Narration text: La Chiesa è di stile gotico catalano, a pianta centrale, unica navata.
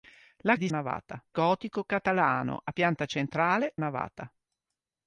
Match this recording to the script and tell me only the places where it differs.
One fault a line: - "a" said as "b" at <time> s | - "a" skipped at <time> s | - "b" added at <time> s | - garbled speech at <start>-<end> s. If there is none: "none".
- "Chiesa" skipped at 0.6 s
- "stile" said as "navata" at 0.7 s
- "unica" skipped at 3.7 s